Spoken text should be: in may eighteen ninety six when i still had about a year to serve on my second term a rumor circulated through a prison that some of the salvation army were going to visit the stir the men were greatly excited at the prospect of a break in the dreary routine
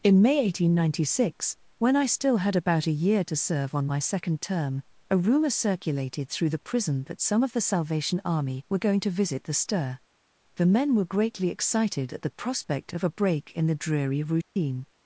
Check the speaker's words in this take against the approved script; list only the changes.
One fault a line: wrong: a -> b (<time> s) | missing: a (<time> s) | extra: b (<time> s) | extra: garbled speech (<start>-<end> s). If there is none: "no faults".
wrong: a -> the (6.5 s)